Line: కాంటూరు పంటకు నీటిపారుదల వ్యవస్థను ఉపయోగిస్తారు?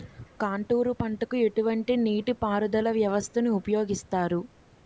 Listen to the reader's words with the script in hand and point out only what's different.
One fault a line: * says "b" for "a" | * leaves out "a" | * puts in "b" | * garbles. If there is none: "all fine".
* puts in "ఎటువంటి"